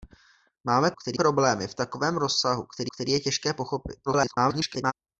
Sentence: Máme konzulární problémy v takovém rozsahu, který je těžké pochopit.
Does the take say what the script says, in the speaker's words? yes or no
no